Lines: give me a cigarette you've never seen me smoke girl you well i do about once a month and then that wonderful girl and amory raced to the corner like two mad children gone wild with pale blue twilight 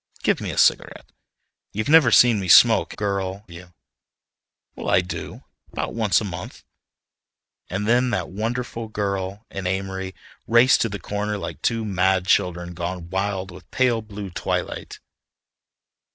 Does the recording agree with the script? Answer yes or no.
yes